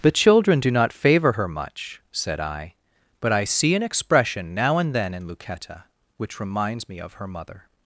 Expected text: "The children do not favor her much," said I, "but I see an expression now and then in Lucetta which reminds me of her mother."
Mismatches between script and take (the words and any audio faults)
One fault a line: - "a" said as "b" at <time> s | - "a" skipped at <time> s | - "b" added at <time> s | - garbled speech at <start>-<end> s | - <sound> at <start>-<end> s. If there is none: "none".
none